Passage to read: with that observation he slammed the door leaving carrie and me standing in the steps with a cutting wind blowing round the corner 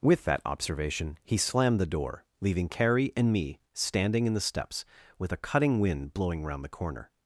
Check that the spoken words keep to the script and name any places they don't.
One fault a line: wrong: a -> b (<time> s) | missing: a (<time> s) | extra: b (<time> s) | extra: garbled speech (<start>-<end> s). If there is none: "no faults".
no faults